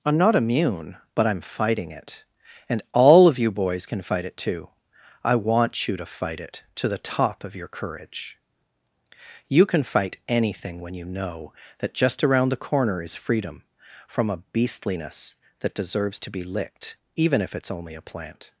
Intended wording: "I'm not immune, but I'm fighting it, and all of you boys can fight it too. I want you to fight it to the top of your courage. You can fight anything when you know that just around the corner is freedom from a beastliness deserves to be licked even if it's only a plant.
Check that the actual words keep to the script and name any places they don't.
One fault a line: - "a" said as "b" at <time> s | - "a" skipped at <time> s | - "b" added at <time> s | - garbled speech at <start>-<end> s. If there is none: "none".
- "that" added at 15.6 s